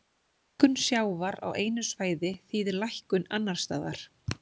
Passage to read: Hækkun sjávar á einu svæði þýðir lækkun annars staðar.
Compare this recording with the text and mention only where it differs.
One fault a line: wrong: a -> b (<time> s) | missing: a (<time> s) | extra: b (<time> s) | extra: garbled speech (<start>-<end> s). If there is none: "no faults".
no faults